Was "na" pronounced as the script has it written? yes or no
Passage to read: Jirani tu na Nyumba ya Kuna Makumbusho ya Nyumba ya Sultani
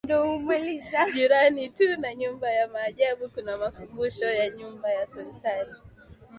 yes